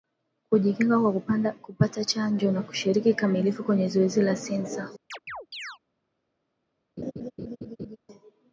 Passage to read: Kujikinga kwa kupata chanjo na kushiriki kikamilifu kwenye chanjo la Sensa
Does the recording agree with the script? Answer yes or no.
no